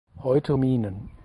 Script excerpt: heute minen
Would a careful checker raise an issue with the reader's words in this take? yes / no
no